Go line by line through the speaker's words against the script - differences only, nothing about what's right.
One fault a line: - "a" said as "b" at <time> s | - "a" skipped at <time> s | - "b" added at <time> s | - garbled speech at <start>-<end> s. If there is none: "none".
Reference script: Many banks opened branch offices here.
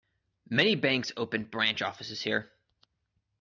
none